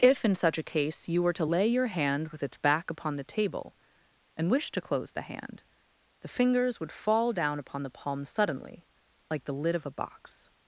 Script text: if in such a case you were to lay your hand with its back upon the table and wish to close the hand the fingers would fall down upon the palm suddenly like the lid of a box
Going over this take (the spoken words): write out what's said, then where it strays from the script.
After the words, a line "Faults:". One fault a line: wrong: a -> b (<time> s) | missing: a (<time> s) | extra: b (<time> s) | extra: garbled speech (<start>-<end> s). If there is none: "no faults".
if in such a case you were to lay your hand with its back upon the table and wish to close the hand the fingers would fall down upon the palm suddenly like the lid of a box
Faults:
no faults